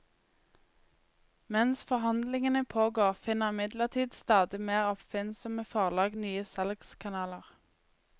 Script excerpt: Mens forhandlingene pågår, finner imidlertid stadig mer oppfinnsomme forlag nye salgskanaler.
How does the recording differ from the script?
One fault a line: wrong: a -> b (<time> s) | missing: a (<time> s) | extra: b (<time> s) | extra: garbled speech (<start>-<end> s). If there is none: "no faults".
no faults